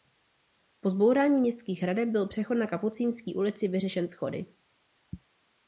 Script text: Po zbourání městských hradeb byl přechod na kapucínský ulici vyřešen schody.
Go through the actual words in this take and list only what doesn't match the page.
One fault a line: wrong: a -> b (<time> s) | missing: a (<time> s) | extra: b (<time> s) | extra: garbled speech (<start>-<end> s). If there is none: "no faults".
no faults